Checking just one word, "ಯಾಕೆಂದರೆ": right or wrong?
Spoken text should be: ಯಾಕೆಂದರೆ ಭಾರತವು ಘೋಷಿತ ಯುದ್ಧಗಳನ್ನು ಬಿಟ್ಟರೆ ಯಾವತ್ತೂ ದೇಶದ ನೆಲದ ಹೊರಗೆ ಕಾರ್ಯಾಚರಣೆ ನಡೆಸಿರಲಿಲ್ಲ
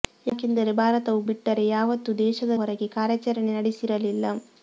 right